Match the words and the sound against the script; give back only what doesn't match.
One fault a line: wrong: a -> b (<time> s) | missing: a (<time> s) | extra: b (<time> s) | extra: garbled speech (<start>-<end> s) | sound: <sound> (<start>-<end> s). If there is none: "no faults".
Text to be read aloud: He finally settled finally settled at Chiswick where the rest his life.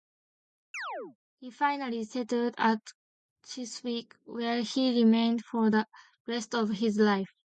sound: chirp (0.7-1.2 s)
missing: finally settled (2.5 s)
extra: he remained for (4.6 s)
extra: of (6.5 s)